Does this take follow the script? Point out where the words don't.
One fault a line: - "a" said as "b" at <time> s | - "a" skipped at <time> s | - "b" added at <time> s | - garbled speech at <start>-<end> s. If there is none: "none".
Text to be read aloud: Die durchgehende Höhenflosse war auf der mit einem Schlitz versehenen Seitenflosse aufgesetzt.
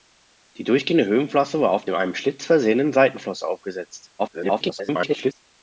- "der mit" skipped at 1.9 s
- garbled speech at 4.2-5.4 s